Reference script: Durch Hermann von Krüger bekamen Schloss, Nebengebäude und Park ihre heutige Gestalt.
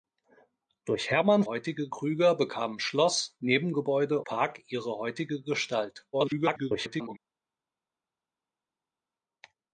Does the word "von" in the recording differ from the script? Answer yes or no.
yes